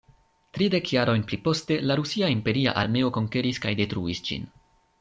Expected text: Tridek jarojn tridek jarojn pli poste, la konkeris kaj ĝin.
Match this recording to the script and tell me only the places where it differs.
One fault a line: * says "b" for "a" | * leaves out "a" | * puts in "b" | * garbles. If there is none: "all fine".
* leaves out "tridek jarojn"
* puts in "rusia imperia armeo"
* puts in "detruis"